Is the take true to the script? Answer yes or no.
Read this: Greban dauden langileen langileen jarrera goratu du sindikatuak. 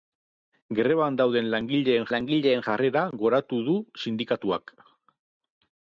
yes